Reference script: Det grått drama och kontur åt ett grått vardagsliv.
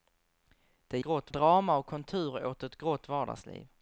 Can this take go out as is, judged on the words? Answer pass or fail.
pass